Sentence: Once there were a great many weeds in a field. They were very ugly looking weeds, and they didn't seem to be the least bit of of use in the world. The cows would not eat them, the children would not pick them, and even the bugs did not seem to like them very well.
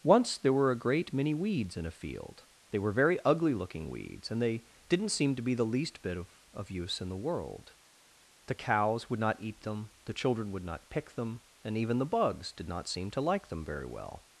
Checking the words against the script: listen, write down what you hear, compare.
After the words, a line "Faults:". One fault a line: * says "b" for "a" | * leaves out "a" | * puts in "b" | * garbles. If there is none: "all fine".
Once there were a great many weeds in a field. They were very ugly looking weeds, and they didn't seem to be the least bit of of use in the world. The cows would not eat them, the children would not pick them, and even the bugs did not seem to like them very well.
Faults:
all fine